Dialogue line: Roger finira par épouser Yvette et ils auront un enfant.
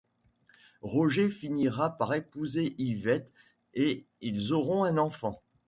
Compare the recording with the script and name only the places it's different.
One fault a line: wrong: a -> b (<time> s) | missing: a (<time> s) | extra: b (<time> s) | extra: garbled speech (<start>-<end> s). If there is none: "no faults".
no faults